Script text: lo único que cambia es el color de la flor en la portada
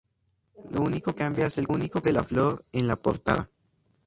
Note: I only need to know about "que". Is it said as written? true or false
false